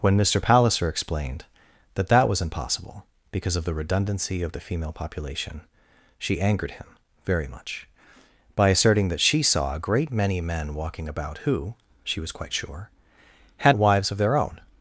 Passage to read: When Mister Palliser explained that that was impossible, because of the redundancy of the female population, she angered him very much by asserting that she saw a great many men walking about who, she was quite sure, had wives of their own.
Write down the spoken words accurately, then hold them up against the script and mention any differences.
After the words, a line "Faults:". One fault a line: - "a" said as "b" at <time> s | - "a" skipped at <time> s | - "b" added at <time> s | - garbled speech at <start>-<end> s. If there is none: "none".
When Mister Palliser explained that that was impossible, because of the redundancy of the female population, she angered him very much by asserting that she saw a great many men walking about who, she was quite sure, had wives of their own.
Faults:
none